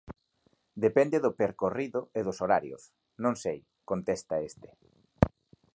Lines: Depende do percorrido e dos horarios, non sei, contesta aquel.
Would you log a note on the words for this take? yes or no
yes